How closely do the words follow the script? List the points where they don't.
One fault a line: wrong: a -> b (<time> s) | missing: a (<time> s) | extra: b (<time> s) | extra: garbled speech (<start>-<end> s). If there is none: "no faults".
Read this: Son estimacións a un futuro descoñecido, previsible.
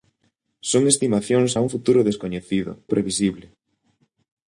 no faults